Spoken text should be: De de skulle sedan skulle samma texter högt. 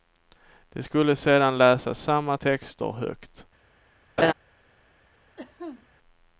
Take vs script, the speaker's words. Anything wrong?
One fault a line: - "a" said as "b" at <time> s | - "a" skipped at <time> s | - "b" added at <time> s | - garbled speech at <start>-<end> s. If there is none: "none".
- "de" skipped at 0.8 s
- "skulle" said as "läsa" at 1.6 s